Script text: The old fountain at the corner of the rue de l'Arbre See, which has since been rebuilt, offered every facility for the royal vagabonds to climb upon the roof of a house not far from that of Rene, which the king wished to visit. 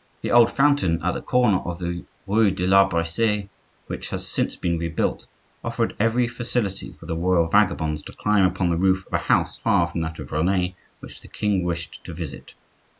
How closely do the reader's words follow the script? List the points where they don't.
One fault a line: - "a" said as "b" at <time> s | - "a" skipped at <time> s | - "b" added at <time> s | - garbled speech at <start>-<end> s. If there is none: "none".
- "not" skipped at 9.6 s